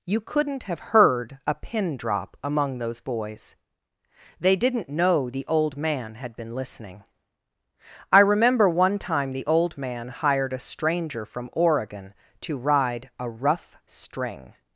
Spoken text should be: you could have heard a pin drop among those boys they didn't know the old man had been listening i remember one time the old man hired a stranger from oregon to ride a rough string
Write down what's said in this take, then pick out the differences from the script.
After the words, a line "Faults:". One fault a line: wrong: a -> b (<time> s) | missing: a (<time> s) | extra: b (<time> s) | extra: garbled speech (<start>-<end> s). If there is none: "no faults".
you couldn't have heard a pin drop among those boys they didn't know the old man had been listening i remember one time the old man hired a stranger from oregon to ride a rough string
Faults:
wrong: could -> couldn't (0.2 s)